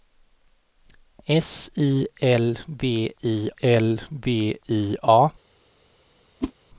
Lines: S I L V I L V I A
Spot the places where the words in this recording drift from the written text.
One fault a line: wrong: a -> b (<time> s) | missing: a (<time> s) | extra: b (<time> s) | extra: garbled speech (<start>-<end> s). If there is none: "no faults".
no faults